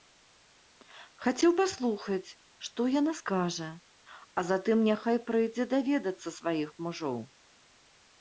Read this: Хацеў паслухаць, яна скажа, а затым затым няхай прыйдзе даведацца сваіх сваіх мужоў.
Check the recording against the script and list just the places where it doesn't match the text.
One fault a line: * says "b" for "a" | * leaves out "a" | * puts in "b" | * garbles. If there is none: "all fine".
* puts in "што"
* leaves out "затым"
* leaves out "сваіх"